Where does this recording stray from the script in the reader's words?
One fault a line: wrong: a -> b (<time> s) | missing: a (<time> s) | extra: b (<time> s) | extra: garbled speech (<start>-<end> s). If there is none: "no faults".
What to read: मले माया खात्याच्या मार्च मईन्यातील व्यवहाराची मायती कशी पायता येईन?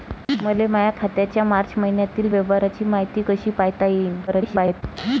extra: garbled speech (4.3-4.8 s)